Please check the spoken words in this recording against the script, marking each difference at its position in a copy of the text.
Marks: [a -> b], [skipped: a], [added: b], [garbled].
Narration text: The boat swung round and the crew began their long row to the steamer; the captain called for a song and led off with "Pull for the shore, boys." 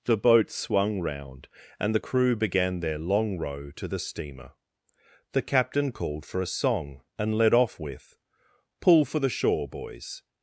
The boat swung round and the crew began their long row to the steamer; the captain called for a song and led off with "Pull for the shore, boys."